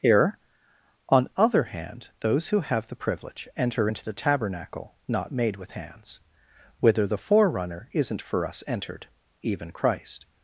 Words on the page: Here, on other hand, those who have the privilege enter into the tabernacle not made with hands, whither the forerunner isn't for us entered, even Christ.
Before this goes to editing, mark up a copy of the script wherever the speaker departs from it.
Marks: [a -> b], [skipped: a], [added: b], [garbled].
Here, on other hand, those who have the privilege enter into the tabernacle not made with hands, whither the forerunner isn't for us entered, even Christ.